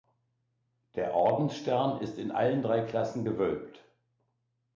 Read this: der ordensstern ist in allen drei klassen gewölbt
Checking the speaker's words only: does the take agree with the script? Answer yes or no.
yes